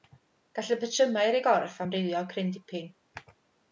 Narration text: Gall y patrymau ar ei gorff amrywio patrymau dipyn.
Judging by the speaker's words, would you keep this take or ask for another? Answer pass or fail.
fail